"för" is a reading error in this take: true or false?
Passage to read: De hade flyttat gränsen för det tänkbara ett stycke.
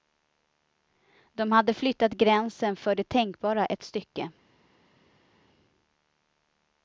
false